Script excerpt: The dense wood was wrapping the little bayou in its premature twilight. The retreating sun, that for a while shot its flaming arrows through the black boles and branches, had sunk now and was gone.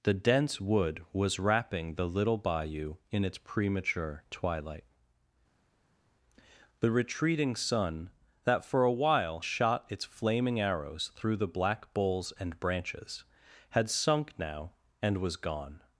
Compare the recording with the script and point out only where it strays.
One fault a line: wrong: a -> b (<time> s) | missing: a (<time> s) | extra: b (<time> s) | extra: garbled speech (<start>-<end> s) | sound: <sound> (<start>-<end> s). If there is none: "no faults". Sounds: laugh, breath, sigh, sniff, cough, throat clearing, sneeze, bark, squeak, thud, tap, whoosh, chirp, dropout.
no faults